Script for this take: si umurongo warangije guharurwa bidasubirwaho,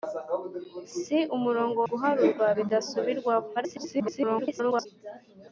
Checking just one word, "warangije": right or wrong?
wrong